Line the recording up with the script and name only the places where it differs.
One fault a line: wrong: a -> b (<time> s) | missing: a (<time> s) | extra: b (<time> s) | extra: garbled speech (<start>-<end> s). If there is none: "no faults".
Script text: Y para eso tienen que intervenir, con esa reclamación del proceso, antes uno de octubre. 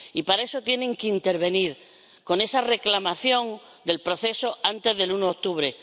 extra: del (5.0 s)